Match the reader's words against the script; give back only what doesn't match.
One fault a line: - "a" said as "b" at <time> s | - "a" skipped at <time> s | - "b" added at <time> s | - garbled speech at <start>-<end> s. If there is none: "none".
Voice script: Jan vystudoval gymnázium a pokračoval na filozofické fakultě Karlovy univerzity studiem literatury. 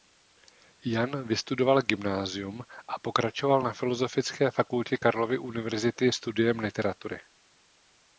none